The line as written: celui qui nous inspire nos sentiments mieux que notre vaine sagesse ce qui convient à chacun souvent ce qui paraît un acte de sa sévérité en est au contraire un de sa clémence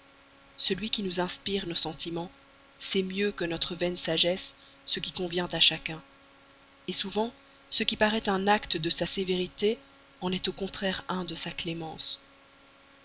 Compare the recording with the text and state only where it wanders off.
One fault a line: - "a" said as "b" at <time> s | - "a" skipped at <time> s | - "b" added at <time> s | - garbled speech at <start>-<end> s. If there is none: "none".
- "sait" added at 2.8 s